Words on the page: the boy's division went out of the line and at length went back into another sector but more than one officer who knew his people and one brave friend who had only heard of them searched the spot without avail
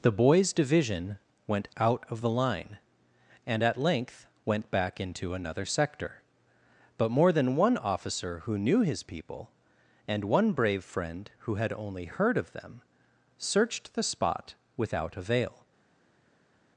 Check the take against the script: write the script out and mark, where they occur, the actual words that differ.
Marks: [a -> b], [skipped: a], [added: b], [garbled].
the boy's division went out of the line and at length went back into another sector but more than one officer who knew his people and one brave friend who had only heard of them searched the spot without avail